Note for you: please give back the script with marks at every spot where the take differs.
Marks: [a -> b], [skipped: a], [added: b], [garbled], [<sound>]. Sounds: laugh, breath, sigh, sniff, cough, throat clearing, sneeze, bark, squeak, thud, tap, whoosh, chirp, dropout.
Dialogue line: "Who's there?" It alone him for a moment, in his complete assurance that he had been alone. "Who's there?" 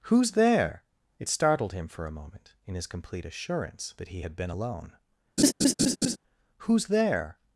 "Who's there?" It [alone -> startled] him for a moment, in his complete assurance that he had been alone. [laugh] "Who's there?"